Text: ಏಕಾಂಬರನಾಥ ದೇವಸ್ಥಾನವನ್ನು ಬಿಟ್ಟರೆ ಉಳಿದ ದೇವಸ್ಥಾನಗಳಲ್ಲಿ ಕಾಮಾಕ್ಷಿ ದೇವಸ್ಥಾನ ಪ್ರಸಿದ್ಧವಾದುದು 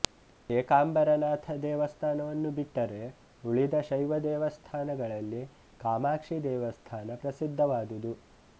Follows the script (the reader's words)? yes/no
no